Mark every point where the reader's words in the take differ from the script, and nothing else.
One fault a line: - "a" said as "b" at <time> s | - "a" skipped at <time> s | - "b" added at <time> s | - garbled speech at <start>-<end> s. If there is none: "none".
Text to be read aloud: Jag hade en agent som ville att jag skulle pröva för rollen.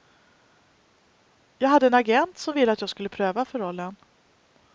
none